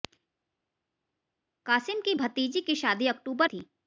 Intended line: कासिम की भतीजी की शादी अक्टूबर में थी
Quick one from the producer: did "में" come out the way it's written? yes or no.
no